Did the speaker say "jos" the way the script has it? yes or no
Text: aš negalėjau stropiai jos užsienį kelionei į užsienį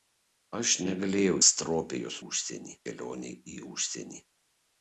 yes